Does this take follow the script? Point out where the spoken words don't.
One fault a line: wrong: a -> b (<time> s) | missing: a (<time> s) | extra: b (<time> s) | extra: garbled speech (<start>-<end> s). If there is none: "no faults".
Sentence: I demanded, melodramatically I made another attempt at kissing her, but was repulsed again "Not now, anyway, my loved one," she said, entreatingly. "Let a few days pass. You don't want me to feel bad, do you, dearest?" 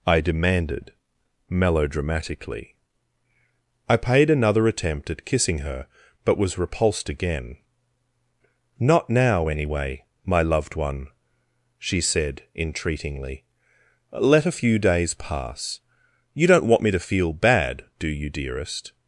wrong: made -> paid (4.0 s)